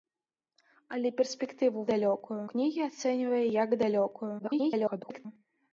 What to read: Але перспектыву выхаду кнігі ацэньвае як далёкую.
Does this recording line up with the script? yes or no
no